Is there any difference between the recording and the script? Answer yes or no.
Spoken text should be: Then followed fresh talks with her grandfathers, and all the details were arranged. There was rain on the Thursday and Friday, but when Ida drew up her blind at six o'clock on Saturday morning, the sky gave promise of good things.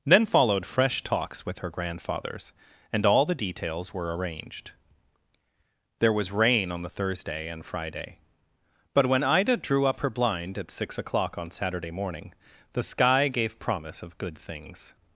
no